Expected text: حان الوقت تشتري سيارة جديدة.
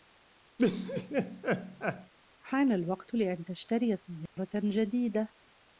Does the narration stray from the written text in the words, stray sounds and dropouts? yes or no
yes